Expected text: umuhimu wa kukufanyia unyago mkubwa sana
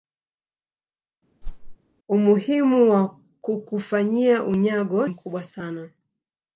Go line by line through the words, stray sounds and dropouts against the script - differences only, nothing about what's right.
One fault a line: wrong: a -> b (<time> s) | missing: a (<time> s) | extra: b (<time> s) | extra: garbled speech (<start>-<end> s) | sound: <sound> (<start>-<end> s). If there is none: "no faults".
sound: whoosh (1.4-1.8 s)